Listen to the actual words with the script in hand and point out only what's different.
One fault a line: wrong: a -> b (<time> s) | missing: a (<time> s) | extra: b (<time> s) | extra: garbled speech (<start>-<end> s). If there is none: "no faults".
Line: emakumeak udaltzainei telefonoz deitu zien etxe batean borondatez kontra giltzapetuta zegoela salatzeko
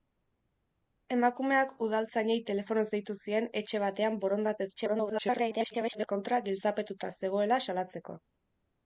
extra: garbled speech (4.8-6.1 s)